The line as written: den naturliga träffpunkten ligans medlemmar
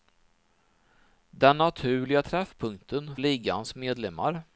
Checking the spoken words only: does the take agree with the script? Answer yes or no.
yes